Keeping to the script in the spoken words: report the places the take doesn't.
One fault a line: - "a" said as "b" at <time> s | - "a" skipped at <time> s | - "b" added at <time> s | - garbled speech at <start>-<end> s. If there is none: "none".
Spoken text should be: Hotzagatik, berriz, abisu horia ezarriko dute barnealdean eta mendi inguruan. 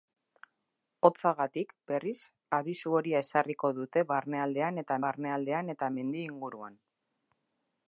- "barnealdean eta" added at 5.0 s